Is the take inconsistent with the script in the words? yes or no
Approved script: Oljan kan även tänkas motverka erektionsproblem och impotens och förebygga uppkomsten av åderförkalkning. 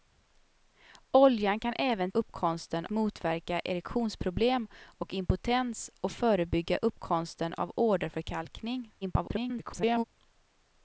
yes